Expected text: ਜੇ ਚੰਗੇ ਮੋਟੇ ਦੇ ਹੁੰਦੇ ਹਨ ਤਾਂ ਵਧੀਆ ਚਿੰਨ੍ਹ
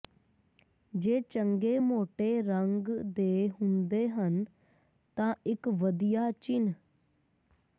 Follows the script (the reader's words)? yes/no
no